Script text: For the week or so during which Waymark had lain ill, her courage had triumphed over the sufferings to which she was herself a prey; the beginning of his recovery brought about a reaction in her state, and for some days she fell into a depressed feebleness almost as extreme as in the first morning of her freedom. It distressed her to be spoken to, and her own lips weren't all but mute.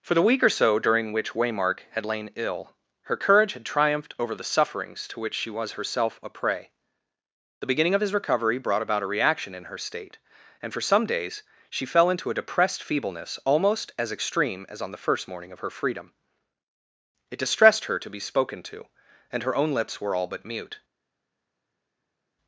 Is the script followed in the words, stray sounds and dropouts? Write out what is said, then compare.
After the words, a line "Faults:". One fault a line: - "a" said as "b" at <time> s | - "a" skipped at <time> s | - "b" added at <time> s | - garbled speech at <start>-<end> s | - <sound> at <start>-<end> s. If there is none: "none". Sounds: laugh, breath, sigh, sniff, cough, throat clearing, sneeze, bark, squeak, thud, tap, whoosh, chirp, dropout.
For the week or so during which Waymark had lain ill, her courage had triumphed over the sufferings to which she was herself a prey; the beginning of his recovery brought about a reaction in her state, and for some days she fell into a depressed feebleness almost as extreme as on the first morning of her freedom. It distressed her to be spoken to, and her own lips were all but mute.
Faults:
- "in" said as "on" at 14.8 s
- "weren't" said as "were" at 20.0 s